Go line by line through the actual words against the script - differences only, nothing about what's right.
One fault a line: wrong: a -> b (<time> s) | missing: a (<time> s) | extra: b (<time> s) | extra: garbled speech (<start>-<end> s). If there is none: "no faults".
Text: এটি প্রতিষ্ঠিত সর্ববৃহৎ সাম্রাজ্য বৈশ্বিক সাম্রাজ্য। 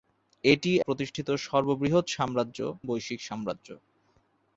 no faults